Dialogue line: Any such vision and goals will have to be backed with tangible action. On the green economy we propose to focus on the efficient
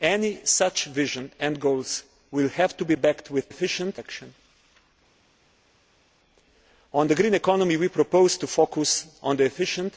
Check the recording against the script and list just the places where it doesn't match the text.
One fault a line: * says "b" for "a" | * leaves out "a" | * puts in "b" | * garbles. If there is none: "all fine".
* says "efficient" for "tangible"